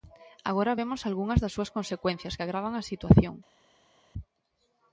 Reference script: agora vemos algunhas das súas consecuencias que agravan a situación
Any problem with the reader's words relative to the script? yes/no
no